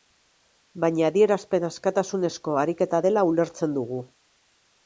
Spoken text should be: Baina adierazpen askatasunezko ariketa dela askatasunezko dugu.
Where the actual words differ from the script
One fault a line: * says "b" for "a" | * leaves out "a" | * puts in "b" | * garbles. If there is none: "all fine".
* says "ulertzen" for "askatasunezko"